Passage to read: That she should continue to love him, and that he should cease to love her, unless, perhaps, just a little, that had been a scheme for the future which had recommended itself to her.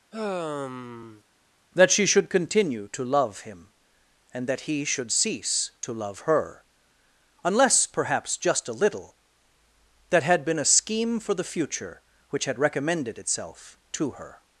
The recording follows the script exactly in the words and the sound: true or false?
false